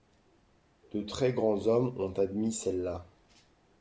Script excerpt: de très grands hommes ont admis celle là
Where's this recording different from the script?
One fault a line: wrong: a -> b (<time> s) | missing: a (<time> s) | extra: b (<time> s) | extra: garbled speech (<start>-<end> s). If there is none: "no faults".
no faults